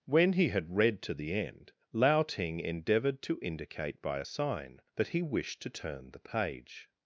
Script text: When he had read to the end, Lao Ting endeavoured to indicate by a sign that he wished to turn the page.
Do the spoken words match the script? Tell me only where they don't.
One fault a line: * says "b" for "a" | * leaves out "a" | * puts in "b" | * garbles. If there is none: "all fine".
all fine